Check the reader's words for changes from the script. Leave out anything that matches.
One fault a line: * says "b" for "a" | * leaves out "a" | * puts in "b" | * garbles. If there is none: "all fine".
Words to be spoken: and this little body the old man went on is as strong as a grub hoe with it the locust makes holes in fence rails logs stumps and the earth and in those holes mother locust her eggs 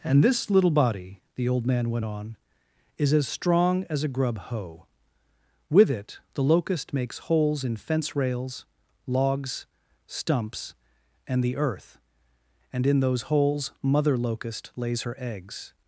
* puts in "lays"